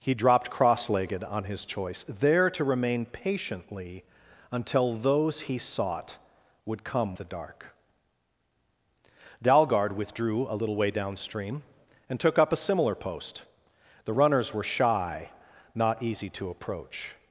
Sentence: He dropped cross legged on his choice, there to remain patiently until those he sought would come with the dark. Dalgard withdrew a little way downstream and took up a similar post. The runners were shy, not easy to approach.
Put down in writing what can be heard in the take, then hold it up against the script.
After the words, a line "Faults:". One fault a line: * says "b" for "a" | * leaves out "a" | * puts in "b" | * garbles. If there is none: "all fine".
He dropped cross legged on his choice, there to remain patiently until those he sought would come the dark. Dalgard withdrew a little way downstream and took up a similar post. The runners were shy, not easy to approach.
Faults:
* leaves out "with"